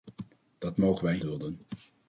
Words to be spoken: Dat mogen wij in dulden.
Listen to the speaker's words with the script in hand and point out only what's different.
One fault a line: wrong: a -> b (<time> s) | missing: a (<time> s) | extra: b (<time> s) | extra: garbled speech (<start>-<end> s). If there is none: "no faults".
no faults